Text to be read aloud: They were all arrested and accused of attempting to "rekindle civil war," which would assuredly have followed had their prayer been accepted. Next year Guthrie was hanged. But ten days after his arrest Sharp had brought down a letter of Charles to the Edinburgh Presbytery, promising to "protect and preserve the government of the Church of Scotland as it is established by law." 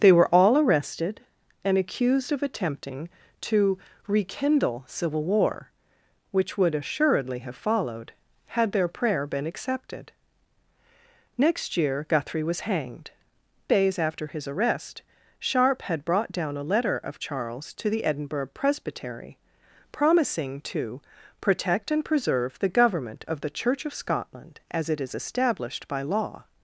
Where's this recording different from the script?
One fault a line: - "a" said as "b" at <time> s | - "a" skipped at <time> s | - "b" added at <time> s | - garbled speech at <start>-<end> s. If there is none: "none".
- "But ten" skipped at 13.1 s